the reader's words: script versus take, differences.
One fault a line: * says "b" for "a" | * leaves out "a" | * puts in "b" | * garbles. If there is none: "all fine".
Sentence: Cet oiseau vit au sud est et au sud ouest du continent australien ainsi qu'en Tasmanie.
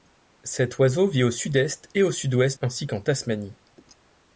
* leaves out "du continent australien"